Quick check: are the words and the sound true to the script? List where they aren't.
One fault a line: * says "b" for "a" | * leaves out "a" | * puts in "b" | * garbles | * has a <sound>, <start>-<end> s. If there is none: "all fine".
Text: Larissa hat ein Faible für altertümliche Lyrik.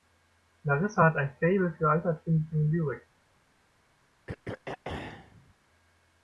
* has a throat clearing, 4.3-5.5 s